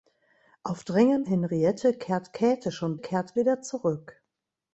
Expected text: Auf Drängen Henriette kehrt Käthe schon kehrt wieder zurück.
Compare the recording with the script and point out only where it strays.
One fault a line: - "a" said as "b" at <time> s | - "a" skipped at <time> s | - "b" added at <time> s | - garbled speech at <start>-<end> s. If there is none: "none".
none